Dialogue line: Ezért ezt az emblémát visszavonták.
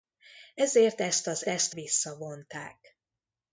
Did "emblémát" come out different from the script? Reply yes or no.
yes